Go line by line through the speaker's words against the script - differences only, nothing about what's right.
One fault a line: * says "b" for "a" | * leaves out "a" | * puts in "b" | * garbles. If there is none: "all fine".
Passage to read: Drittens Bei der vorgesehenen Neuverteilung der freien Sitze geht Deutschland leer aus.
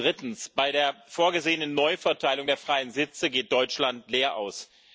all fine